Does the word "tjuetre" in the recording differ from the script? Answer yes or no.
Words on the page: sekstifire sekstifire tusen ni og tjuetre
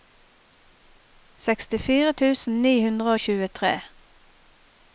no